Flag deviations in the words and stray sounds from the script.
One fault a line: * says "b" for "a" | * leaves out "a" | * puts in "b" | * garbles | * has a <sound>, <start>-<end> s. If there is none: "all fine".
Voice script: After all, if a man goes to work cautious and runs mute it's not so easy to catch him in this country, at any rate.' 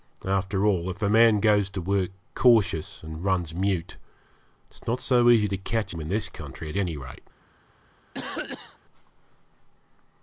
* has a cough, 8.1-8.8 s